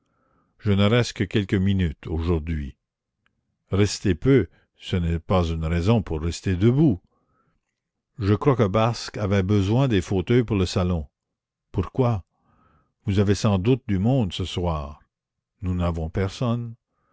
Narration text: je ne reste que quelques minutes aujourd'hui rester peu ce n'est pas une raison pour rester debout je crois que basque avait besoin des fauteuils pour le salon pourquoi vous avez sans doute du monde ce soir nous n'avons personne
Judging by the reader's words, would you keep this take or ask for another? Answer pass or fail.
pass